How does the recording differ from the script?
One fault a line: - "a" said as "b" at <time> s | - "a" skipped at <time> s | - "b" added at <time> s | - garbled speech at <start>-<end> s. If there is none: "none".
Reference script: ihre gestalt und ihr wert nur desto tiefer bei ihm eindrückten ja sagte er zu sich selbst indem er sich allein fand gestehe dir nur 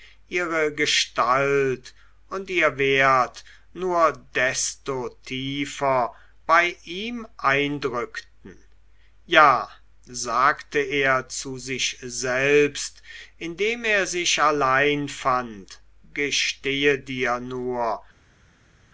none